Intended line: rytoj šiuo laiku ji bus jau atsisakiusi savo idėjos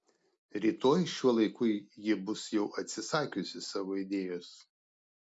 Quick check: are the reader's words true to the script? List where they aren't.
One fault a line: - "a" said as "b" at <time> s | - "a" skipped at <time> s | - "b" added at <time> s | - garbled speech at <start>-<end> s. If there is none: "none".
none